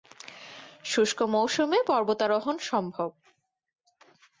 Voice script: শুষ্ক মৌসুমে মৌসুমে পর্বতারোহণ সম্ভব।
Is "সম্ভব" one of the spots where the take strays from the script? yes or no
no